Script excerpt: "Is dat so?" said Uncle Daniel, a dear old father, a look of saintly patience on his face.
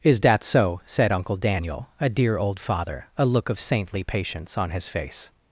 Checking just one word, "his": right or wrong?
right